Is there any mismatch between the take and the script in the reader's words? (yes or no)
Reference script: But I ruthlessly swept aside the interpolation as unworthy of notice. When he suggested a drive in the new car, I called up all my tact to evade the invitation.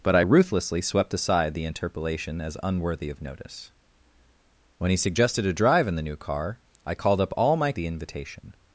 yes